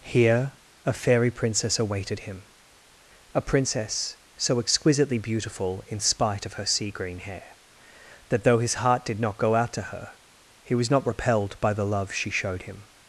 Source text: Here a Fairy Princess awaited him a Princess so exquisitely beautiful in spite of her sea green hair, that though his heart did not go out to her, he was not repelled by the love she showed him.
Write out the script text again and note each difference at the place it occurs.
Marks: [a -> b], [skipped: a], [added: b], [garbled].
Here a Fairy Princess awaited him a Princess so exquisitely beautiful in spite of her sea green hair, that though his heart did not go out to her, he was not repelled by the love she showed him.